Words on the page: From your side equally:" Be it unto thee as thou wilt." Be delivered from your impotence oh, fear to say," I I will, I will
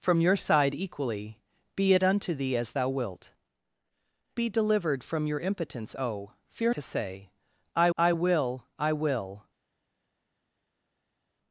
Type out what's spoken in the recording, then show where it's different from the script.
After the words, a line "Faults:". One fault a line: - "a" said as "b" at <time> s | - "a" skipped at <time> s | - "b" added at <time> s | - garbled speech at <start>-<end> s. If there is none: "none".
From your side equally:" Be it unto thee as thou wilt." Be delivered from your impotence oh, fear to say," I I will, I will
Faults:
none